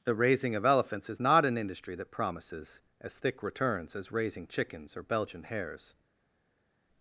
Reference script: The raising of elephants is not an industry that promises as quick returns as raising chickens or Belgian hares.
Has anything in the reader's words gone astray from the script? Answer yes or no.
yes